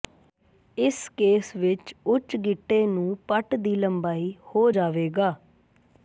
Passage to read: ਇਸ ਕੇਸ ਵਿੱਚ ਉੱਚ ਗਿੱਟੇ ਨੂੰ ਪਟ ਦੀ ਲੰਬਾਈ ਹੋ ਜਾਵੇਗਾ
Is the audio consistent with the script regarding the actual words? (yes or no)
yes